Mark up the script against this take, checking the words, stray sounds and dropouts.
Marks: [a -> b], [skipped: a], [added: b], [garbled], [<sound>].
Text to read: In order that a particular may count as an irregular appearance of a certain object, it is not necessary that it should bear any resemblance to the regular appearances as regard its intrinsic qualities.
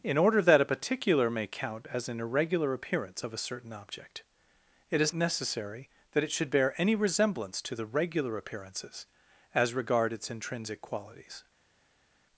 In order that a particular may count as an irregular appearance of a certain object, it is [skipped: not] necessary that it should bear any resemblance to the regular appearances as regard its intrinsic qualities.